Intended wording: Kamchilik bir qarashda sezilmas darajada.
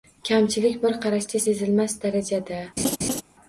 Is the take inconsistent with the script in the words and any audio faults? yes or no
yes